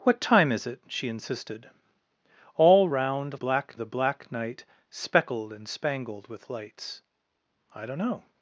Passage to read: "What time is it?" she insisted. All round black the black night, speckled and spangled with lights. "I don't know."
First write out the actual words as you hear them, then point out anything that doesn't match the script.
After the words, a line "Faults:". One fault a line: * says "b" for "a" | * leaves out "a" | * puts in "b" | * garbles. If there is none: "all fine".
"What time is it?" she insisted. All round black the black night, speckled and spangled with lights. "I don't know."
Faults:
all fine